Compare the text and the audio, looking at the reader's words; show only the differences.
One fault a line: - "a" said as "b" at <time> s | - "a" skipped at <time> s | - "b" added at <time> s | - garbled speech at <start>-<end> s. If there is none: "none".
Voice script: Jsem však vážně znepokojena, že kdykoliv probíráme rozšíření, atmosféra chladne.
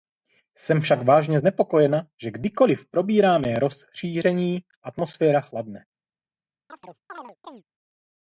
none